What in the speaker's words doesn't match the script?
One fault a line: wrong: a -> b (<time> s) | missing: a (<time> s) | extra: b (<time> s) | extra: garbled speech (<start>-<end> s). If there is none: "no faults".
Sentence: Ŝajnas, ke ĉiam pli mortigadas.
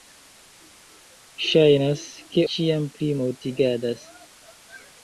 no faults